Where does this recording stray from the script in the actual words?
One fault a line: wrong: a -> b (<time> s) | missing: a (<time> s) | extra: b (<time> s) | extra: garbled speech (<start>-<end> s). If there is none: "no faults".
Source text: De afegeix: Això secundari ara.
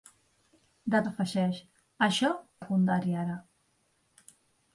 no faults